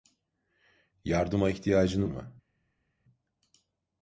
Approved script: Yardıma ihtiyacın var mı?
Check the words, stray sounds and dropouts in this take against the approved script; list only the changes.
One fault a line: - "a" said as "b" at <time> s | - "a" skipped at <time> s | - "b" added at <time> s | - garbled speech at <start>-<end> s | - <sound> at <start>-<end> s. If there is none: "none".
- "var" skipped at 2.1 s